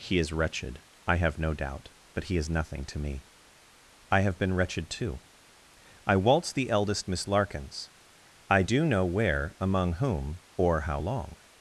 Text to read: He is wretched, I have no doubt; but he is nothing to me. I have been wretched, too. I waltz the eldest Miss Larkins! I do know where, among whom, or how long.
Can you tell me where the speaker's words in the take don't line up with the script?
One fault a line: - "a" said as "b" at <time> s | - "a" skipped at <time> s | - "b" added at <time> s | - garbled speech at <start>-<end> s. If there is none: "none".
none